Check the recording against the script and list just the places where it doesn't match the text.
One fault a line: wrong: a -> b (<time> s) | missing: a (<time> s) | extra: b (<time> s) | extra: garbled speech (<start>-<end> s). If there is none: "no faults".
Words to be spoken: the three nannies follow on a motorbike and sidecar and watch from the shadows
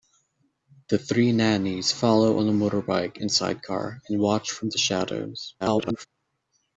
extra: garbled speech (5.6-6.1 s)